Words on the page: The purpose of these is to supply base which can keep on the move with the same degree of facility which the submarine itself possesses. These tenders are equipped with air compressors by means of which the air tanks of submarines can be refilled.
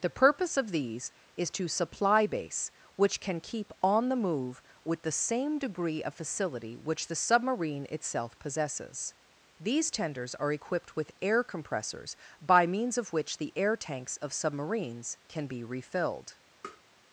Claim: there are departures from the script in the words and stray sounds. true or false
true